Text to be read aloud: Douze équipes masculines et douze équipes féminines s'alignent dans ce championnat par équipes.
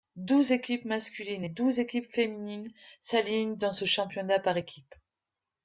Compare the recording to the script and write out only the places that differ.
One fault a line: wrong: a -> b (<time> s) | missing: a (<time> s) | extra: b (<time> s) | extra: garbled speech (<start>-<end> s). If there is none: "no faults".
no faults